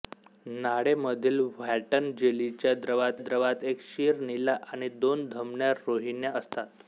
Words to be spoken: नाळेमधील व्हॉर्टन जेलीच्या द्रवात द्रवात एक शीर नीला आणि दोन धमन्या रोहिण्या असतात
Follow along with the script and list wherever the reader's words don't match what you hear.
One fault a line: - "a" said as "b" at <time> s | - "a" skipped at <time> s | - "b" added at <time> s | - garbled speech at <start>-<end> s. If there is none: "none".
none